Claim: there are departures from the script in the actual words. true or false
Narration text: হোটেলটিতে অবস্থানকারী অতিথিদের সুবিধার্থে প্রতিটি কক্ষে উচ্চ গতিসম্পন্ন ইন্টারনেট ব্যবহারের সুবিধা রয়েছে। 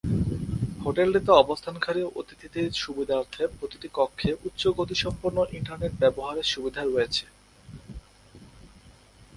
false